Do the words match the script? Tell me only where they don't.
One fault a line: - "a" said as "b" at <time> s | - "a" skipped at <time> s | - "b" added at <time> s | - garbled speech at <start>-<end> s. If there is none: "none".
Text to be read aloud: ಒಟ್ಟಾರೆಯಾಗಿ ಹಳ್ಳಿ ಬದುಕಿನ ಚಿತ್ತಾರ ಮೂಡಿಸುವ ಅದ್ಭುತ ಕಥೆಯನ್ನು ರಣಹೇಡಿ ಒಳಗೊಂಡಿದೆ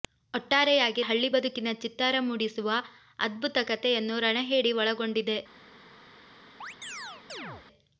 none